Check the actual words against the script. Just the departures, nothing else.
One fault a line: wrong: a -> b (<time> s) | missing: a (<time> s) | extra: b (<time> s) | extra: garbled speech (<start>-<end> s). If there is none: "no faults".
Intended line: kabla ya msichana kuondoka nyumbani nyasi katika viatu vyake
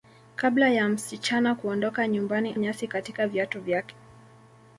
no faults